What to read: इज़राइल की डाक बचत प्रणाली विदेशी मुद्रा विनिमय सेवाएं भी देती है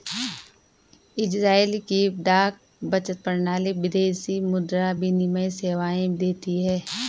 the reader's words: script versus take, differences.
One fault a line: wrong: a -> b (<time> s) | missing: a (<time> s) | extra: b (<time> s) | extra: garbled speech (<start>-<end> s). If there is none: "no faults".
missing: भी (6.1 s)